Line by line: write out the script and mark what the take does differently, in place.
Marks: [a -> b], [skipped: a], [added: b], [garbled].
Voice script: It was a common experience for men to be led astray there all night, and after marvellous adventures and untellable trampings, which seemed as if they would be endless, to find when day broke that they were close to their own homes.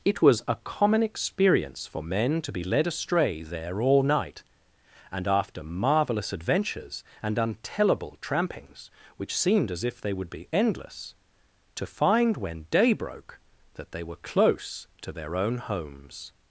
It was a common experience for men to be led astray there all night, and after marvellous adventures and untellable trampings, which seemed as if they would be endless, to find when day broke that they were close to their own homes.